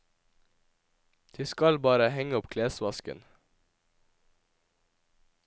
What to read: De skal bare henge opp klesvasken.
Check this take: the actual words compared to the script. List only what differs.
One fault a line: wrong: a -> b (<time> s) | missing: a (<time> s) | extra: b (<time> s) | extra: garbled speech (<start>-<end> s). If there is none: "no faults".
no faults